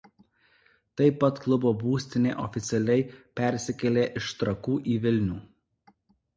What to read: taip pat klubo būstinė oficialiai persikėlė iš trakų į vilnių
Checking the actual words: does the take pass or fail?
pass